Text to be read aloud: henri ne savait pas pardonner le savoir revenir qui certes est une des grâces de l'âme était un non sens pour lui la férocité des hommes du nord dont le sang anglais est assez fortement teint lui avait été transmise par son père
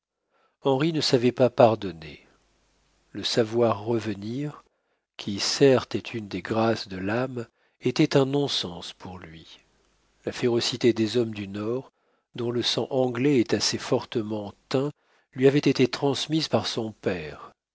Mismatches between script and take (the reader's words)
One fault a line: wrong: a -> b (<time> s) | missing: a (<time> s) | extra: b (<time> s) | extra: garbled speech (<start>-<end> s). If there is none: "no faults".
no faults